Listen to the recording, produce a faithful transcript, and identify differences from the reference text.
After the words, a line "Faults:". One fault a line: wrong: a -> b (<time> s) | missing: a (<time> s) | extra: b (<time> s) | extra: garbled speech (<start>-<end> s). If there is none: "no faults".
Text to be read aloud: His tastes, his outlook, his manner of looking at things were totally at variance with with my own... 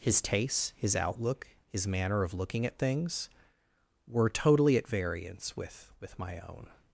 His tastes, his outlook, his manner of looking at things were totally at variance with with my own...
Faults:
no faults